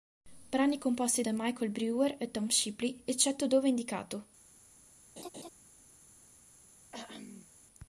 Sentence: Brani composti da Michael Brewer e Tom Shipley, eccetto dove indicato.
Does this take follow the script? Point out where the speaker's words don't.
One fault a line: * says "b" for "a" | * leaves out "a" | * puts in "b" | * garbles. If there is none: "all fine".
all fine